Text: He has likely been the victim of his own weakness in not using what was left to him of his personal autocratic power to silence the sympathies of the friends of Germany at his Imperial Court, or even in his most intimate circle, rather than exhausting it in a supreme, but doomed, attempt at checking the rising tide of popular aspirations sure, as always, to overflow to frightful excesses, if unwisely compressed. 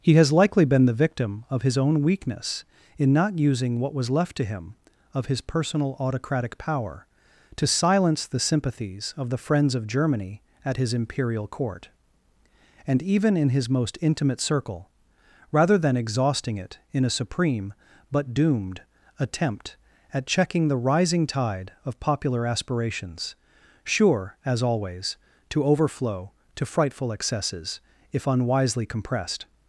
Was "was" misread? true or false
false